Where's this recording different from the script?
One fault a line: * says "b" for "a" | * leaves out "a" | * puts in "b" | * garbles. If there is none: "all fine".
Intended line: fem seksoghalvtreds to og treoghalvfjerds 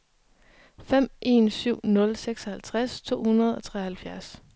* puts in "en syv nul"
* puts in "hundrede"